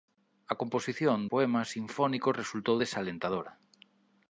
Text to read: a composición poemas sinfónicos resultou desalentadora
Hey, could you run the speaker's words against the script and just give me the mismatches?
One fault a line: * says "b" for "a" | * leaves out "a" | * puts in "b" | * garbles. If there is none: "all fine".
all fine